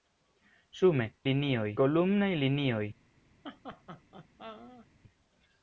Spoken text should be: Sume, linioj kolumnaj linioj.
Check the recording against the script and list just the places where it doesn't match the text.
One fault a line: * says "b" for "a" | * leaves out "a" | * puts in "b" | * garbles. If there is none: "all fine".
all fine